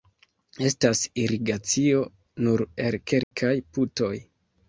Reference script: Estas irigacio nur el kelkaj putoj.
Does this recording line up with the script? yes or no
yes